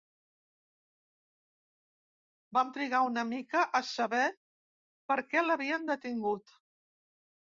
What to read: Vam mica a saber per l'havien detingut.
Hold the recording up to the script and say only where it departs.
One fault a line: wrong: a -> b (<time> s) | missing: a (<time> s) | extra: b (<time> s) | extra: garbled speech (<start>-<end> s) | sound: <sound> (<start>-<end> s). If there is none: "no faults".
extra: trigar una (2.8 s)
extra: què (5.3 s)